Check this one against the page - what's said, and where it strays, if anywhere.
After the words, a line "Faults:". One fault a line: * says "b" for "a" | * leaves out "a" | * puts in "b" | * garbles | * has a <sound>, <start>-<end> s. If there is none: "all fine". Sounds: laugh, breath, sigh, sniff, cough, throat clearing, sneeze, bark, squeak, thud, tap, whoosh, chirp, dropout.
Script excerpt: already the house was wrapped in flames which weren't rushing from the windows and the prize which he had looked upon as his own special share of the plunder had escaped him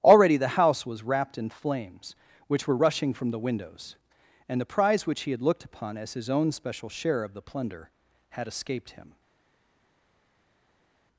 already the house was wrapped in flames which were rushing from the windows and the prize which he had looked upon as his own special share of the plunder had escaped him
Faults:
* says "were" for "weren't"